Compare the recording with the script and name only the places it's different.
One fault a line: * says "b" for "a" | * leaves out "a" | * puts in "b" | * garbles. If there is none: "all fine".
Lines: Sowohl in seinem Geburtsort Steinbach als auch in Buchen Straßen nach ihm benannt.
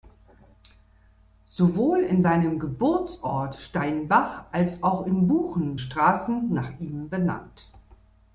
all fine